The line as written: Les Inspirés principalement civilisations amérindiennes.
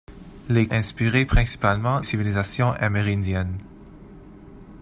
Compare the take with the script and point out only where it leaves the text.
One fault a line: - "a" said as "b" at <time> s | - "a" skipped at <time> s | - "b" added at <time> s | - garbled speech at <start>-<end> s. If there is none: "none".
none